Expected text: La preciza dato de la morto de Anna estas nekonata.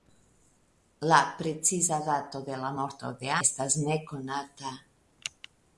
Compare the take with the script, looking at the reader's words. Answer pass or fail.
fail